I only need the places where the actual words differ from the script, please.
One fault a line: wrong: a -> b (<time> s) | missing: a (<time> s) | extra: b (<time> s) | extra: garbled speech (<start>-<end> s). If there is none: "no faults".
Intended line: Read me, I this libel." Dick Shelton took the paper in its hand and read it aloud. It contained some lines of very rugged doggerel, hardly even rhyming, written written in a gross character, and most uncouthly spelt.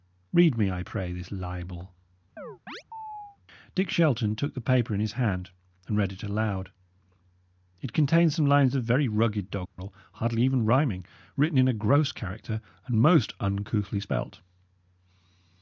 extra: pray (0.8 s)
wrong: its -> his (5.0 s)
missing: written (11.6 s)